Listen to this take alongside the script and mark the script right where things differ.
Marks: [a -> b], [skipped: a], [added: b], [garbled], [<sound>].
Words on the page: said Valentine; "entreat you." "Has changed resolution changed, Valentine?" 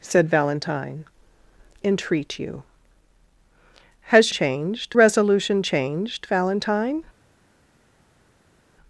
said Valentine; "entreat you." "Has changed resolution changed, Valentine?"